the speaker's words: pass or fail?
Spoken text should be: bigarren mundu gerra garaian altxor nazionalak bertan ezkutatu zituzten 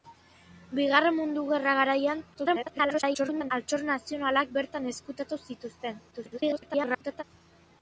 fail